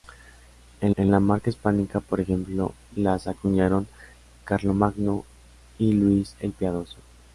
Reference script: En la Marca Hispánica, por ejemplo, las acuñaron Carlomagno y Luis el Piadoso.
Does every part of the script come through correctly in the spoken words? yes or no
no